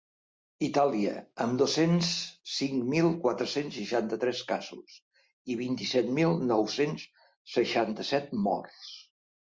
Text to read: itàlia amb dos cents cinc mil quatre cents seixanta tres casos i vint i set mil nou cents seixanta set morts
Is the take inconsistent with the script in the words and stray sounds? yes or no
no